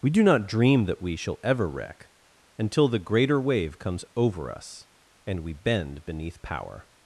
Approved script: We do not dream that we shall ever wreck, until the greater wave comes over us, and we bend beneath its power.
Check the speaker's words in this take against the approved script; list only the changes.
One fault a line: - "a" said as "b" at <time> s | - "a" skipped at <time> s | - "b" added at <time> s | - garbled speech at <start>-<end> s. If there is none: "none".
- "its" skipped at 6.4 s